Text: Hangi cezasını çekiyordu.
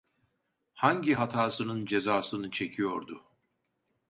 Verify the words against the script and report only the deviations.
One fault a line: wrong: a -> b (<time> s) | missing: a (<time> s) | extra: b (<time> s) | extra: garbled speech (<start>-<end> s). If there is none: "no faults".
extra: hatasının (1.1 s)